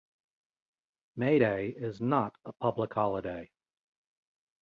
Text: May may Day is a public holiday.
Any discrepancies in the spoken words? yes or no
yes